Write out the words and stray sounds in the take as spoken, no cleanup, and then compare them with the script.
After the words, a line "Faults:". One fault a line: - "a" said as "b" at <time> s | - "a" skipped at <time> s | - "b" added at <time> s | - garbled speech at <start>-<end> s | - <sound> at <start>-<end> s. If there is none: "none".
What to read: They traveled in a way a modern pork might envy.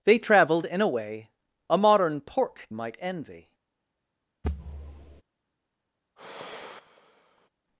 They traveled in a way a modern pork might envy.
Faults:
- thud at 4.4-5.2 s
- sigh at 6.2-7.5 s